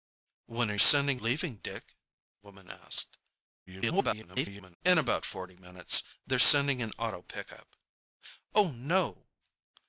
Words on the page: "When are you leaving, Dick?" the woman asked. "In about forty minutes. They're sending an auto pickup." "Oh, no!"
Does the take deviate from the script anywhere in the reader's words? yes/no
yes